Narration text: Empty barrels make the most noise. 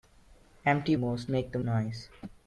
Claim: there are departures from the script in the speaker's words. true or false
true